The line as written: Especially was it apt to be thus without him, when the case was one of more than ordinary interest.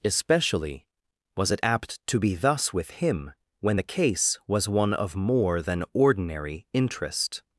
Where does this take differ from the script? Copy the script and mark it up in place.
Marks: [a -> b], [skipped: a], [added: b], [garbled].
Especially was it apt to be thus [without -> with] him, when the case was one of more than ordinary interest.